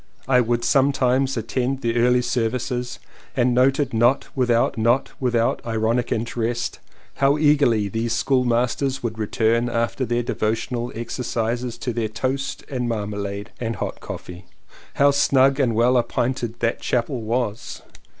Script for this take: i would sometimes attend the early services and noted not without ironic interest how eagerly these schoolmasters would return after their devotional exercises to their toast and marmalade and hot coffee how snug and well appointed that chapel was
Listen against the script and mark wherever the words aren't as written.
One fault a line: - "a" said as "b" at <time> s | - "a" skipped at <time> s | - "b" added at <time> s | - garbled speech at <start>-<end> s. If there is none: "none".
- "not without" added at 4.8 s